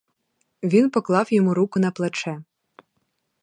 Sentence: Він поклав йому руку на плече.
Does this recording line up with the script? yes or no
yes